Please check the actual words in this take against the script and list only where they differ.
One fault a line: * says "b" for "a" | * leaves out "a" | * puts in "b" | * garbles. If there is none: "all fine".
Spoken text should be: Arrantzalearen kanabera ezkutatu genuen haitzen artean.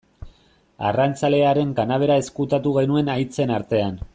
all fine